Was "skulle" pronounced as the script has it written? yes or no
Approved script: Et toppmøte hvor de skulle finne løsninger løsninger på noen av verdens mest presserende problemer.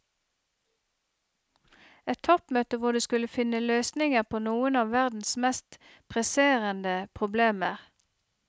yes